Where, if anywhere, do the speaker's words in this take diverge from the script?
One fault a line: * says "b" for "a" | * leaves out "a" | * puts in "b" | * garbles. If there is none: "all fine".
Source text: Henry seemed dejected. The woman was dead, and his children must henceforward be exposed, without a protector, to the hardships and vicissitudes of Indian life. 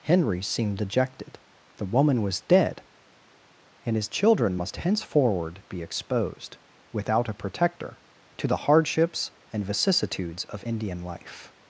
all fine